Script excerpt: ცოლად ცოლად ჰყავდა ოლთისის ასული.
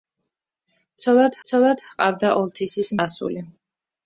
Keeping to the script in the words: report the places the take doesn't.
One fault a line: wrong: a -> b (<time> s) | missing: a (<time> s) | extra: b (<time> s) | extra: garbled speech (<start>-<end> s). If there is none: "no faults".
no faults